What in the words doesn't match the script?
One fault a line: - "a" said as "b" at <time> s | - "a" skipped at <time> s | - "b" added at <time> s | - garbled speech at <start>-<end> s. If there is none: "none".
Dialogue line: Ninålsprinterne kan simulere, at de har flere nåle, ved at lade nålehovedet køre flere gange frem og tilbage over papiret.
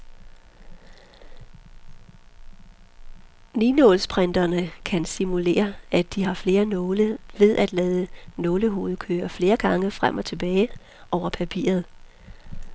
none